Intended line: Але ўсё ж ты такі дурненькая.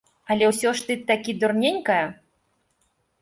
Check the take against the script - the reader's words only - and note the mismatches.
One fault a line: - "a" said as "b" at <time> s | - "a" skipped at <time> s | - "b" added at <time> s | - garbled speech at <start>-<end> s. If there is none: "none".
none